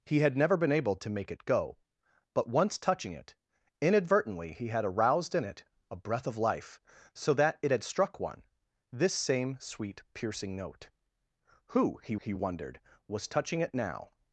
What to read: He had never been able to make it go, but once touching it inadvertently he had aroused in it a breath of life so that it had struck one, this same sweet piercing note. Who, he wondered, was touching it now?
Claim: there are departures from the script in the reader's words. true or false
true